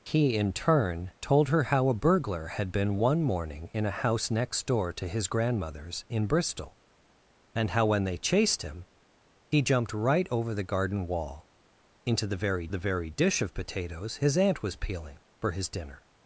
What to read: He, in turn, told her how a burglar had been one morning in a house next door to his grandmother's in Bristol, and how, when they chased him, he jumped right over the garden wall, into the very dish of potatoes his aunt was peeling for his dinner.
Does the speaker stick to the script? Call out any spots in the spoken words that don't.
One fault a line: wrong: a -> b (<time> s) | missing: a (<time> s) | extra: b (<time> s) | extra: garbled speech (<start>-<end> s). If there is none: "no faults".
extra: the very (12.7 s)